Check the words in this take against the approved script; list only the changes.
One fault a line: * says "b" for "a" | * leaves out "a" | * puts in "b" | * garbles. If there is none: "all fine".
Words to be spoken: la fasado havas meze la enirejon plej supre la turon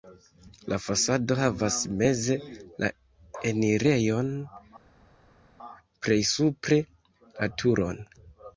all fine